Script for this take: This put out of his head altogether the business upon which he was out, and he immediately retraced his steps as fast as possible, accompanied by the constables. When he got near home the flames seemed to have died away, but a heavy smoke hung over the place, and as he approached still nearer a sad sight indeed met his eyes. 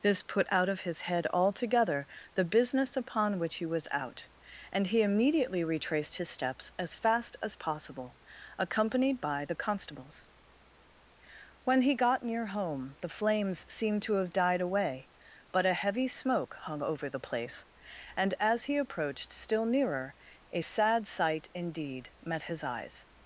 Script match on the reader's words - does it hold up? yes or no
yes